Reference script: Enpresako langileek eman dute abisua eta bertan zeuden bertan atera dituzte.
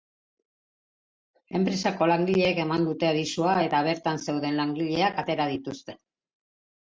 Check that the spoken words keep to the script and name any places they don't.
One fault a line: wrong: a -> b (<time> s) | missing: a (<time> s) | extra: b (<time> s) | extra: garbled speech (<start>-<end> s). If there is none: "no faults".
wrong: bertan -> langileak (4.6 s)